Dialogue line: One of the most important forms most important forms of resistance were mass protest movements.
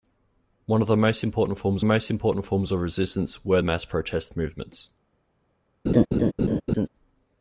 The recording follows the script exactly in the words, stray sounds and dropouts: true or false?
false